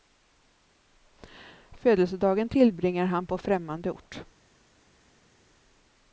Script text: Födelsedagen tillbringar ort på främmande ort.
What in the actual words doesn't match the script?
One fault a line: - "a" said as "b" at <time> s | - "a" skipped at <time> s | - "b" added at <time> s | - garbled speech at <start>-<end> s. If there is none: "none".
- "ort" said as "han" at 3.0 s